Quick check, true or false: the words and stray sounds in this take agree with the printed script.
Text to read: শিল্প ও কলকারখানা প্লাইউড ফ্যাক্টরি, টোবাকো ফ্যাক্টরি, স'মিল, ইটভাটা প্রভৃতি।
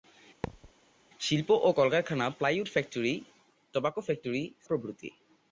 false